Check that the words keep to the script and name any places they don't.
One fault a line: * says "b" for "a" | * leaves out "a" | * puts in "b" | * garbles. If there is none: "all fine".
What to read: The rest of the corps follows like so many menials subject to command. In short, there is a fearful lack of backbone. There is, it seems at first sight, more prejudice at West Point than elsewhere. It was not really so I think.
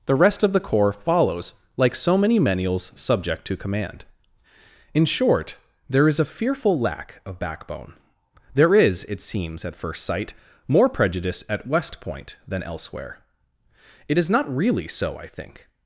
* says "is" for "was"